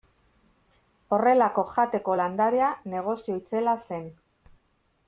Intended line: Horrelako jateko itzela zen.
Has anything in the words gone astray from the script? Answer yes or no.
yes